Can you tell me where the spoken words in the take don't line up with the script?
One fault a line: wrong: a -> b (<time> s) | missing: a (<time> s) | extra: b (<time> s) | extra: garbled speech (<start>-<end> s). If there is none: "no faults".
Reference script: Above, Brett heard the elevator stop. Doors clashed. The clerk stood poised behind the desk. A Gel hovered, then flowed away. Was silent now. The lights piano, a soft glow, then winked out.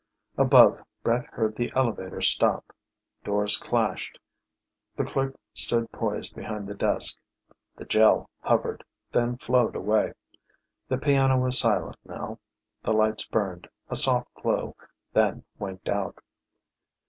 wrong: A -> The (7.7 s)
extra: The piano (10.9 s)
wrong: piano -> burned (13.3 s)